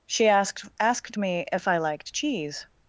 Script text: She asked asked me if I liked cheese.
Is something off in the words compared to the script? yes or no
no